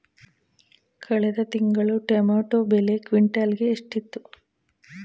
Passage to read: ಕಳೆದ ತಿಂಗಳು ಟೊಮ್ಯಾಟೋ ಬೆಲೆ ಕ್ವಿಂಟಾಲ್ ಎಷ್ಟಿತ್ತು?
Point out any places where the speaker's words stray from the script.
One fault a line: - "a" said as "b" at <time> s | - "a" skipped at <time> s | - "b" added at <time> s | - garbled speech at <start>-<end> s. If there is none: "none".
- "ಗೆ" added at 3.5 s